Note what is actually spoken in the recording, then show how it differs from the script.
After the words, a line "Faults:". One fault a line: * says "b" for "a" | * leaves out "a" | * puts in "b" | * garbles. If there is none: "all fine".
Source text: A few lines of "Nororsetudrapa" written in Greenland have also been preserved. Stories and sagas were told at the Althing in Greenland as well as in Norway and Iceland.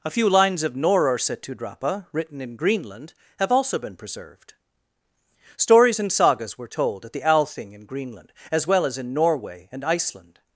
A few lines of "Nororsetudrapa" written in Greenland have also been preserved. Stories and sagas were told at the Althing in Greenland as well as in Norway and Iceland.
Faults:
all fine